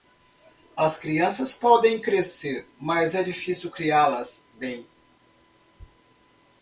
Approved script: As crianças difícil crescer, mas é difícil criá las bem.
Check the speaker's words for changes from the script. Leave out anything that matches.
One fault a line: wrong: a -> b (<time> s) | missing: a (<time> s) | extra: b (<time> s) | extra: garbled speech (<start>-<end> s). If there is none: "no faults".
wrong: difícil -> podem (1.5 s)